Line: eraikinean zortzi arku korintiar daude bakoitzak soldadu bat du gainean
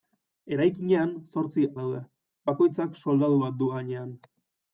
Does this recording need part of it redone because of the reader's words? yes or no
yes